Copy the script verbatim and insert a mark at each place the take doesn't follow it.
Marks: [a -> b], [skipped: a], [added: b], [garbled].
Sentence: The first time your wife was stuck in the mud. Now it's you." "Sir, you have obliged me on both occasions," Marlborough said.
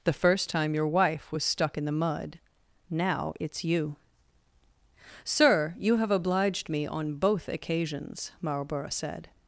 The first time your wife was stuck in the mud. Now it's you." "Sir, you have obliged me on both occasions," Marlborough said.